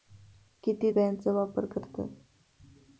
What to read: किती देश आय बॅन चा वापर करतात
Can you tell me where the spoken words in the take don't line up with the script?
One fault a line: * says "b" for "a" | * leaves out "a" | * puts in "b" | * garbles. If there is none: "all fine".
* leaves out "देश आय"